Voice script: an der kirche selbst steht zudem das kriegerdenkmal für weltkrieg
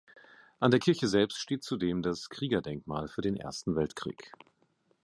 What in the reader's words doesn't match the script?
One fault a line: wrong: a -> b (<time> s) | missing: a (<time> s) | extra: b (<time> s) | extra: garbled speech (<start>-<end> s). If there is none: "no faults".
extra: den ersten (3.2 s)